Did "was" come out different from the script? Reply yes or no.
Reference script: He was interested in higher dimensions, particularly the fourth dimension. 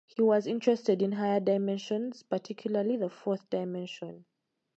no